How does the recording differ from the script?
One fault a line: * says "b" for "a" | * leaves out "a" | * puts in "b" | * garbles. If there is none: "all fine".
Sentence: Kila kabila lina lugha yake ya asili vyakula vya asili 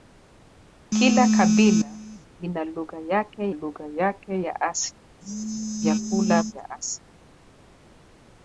* puts in "lugha yake"